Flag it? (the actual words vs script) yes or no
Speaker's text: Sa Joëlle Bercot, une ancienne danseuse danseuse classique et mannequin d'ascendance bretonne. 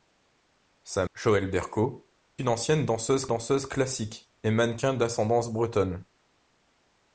no